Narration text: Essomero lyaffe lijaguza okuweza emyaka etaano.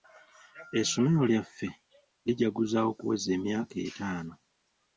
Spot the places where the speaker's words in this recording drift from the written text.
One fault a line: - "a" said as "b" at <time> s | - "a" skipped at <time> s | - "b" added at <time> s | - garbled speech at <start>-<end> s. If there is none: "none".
none